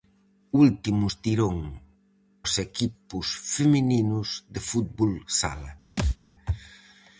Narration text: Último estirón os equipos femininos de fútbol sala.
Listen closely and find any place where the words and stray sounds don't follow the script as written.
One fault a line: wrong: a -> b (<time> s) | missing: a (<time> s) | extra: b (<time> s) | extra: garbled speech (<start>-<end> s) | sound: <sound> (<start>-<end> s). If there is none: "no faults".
sound: thud (6.0-6.2 s)